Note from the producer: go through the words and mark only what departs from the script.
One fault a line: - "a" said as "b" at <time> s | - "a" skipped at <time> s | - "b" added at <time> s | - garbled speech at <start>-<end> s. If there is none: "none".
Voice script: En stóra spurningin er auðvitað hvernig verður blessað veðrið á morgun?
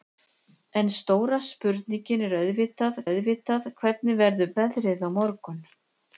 - "auðvitað" added at 3.1 s
- "blessað" skipped at 4.5 s